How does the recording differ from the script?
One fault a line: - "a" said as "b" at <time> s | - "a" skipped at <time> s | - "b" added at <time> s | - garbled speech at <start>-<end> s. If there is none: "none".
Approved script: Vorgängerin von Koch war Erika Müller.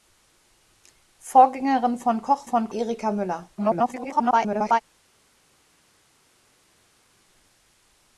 - "war" said as "von" at 2.4 s
- garbled speech at 3.6-4.8 s